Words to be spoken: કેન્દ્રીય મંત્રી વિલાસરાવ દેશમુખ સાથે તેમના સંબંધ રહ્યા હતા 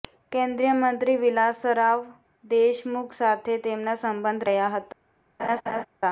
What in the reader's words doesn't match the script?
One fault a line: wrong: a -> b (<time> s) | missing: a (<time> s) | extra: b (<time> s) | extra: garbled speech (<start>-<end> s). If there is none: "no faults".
no faults